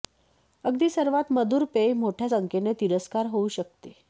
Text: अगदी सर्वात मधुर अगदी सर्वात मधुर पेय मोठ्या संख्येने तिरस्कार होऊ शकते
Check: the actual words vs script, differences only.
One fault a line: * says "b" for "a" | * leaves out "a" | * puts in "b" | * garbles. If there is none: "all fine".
* leaves out "अगदी सर्वात मधुर"